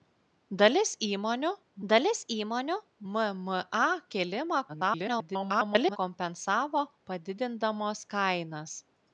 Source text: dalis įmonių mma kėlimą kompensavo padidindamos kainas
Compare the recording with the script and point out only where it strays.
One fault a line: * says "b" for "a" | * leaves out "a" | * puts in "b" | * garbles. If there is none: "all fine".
* puts in "dalis įmonių"
* garbles